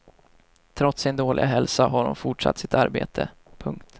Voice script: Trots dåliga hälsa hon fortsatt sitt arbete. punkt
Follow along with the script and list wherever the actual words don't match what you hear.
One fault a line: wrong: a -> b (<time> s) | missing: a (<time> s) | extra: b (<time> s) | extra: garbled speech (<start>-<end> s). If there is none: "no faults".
extra: sin (1.0 s)
extra: har (1.9 s)